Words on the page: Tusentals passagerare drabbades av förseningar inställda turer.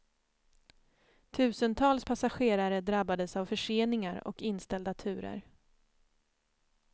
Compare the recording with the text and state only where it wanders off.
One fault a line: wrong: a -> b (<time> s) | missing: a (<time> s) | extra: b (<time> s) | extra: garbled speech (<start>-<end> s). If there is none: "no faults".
extra: och (4.3 s)